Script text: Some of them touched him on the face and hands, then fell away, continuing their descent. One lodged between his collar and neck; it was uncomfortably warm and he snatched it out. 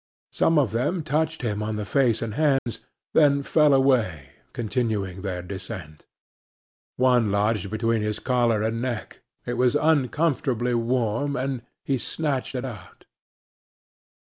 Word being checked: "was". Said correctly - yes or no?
yes